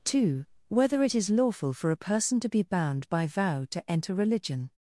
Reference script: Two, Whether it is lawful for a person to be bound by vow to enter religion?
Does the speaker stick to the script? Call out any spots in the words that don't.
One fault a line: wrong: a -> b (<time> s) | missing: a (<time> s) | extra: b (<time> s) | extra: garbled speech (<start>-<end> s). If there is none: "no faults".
no faults